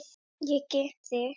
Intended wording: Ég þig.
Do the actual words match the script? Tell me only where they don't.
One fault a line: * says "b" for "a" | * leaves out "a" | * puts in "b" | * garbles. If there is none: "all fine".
all fine